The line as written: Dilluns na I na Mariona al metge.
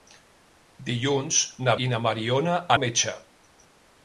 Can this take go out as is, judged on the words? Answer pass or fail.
pass